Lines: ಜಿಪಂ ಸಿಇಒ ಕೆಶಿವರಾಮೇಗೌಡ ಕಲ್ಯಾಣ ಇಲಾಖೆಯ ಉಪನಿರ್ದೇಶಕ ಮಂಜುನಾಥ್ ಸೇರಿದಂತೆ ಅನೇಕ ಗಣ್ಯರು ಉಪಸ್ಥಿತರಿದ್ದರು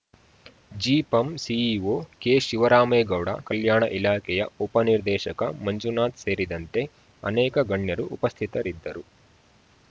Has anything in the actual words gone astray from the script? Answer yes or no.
no